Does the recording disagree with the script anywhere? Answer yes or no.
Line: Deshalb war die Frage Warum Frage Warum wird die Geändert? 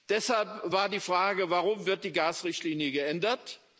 yes